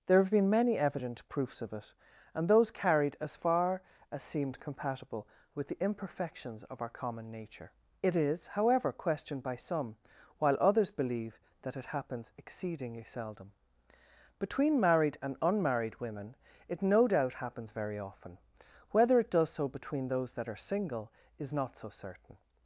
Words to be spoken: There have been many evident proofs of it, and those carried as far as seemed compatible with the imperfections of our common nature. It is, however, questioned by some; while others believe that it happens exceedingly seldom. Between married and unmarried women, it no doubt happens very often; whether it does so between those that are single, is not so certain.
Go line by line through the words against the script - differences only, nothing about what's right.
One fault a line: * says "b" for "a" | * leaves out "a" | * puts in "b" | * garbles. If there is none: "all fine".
all fine